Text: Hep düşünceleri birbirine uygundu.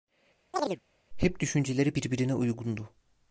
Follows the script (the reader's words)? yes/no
yes